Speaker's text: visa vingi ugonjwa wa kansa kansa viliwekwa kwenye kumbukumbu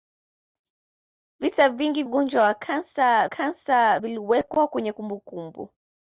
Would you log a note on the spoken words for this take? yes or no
no